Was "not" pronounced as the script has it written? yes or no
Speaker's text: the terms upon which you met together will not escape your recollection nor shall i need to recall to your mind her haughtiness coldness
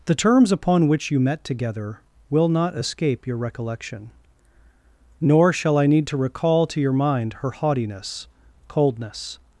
yes